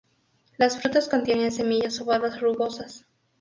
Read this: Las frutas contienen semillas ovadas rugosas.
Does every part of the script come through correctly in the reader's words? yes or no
yes